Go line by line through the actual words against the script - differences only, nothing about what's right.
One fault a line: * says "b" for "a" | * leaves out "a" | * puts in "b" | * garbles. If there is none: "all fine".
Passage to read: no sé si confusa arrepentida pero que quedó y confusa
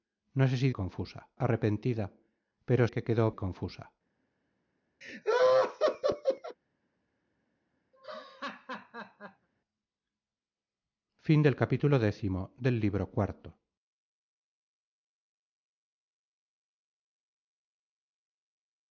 all fine